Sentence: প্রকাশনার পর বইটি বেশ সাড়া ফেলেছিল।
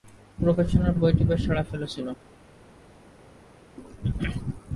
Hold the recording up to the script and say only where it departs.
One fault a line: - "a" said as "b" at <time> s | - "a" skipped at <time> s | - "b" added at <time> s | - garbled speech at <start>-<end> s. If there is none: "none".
- "পর" skipped at 0.9 s